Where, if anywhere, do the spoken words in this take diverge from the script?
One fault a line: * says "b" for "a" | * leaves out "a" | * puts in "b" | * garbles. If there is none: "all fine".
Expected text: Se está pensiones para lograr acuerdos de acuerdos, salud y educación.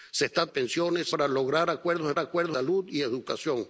all fine